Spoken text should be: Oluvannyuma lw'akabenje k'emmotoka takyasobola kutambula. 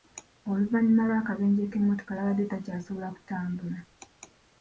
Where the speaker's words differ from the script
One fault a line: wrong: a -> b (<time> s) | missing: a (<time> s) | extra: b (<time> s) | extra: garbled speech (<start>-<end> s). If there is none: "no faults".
extra: yabadde (2.2 s)